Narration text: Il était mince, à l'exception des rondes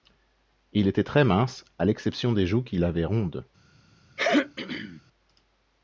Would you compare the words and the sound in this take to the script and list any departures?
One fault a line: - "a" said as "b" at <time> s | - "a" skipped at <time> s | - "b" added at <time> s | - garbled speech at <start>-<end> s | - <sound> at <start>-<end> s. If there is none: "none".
- "très" added at 1.0 s
- "joues qu'il avait" added at 2.5 s
- throat clearing at 4.2-5.0 s